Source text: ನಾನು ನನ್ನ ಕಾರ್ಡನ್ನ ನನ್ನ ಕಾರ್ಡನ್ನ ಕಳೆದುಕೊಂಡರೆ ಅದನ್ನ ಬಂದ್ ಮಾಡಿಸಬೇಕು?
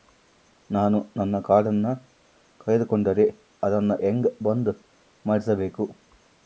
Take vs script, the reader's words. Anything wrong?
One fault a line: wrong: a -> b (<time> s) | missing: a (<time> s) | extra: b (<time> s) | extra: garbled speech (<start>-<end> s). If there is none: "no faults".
missing: ನನ್ನ ಕಾರ್ಡನ್ನ (1.9 s)
extra: ಹೆಂಗ (4.0 s)